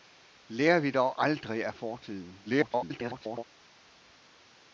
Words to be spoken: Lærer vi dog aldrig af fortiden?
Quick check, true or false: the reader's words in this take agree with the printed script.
false